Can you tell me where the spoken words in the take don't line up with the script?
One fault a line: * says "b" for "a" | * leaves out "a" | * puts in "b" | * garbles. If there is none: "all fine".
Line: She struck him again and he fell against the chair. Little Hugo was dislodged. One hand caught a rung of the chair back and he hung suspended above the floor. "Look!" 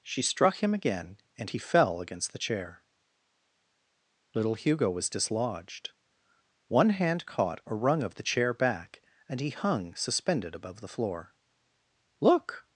all fine